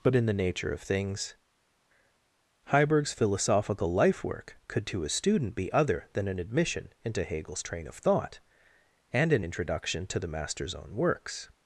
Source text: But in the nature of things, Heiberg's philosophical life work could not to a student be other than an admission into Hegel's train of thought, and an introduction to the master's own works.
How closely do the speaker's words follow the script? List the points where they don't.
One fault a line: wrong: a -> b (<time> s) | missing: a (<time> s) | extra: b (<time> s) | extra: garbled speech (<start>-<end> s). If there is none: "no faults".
missing: not (4.9 s)